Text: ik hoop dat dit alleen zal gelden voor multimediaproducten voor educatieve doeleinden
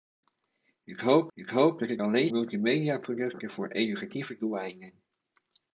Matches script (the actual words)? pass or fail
fail